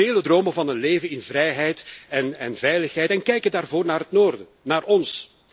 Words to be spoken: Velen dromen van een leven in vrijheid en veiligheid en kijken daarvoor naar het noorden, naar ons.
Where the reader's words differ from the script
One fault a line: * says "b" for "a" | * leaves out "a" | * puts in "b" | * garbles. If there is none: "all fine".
all fine